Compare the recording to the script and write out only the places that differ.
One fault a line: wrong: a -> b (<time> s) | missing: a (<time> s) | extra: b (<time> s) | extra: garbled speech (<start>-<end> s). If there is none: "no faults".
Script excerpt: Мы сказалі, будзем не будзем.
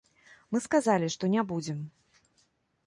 wrong: будзем -> што (1.1 s)